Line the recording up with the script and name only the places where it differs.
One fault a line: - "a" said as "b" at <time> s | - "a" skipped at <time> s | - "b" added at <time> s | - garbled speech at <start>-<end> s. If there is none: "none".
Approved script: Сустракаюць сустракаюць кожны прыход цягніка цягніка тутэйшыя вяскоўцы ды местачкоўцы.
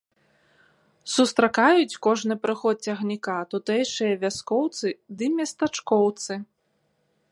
- "сустракаюць" skipped at 2.0 s
- "цягніка" skipped at 3.4 s